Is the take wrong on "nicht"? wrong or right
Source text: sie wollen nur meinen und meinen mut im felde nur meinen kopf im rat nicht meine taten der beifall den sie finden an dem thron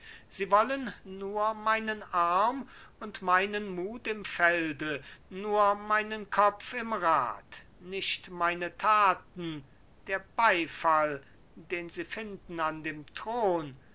right